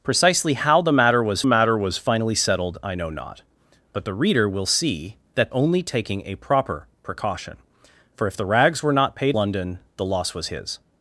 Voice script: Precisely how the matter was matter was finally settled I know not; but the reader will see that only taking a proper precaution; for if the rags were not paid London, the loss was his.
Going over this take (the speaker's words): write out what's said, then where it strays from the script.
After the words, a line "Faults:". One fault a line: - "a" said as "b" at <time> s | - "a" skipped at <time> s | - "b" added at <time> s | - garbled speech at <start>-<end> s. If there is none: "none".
Precisely how the matter was matter was finally settled I know not; but the reader will see that only taking a proper precaution; for if the rags were not paid London, the loss was his.
Faults:
none